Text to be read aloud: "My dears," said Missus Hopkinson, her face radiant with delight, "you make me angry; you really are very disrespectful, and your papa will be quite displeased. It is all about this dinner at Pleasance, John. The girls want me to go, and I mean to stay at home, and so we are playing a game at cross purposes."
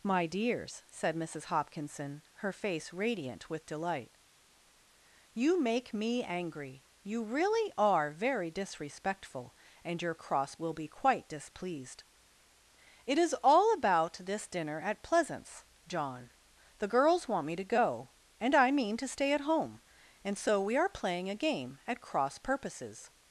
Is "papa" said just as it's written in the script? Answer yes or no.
no